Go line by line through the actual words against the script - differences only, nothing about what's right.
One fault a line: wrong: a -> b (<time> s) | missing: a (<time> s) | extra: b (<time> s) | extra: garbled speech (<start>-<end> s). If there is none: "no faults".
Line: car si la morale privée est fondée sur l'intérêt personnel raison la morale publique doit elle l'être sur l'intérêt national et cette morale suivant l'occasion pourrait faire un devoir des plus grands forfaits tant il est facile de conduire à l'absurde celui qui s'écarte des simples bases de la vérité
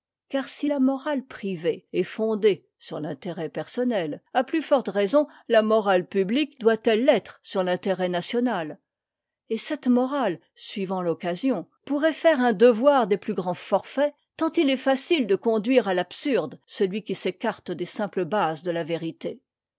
extra: à plus forte (4.3 s)